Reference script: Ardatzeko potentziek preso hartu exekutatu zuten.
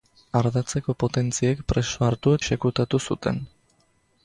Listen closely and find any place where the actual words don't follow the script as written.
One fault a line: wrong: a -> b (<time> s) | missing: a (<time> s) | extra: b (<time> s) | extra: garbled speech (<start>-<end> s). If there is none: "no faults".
no faults